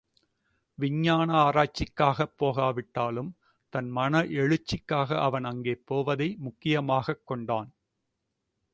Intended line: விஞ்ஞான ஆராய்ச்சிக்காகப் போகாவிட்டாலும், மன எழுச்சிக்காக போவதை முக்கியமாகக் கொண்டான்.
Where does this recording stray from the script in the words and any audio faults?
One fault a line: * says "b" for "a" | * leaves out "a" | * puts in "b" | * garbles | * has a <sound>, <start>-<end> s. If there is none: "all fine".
* puts in "தன்"
* puts in "அவன் அங்கே"